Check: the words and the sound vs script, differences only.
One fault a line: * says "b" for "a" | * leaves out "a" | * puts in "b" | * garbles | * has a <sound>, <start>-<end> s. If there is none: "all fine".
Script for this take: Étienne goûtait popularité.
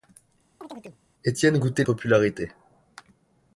* has a chirp, 0.6-1.0 s